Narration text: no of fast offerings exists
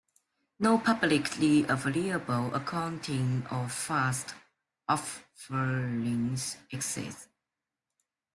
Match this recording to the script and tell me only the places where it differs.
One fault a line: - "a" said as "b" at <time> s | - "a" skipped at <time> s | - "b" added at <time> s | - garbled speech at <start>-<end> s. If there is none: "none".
- "publicly available accounting" added at 0.8 s